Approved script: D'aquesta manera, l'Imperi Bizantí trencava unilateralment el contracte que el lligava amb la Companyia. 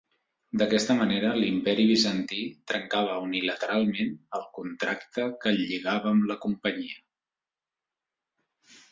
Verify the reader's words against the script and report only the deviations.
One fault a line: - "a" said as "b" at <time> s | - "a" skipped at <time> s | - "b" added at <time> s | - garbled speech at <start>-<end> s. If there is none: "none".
none